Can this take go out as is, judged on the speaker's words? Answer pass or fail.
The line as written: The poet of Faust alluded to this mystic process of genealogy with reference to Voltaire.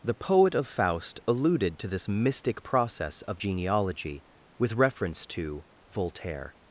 pass